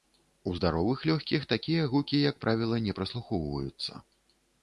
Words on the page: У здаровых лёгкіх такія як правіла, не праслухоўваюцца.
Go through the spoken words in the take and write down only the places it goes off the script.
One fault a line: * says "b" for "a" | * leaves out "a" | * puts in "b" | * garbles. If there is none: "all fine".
* puts in "гукі"